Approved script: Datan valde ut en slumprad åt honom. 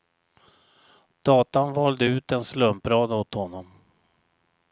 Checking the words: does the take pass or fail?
pass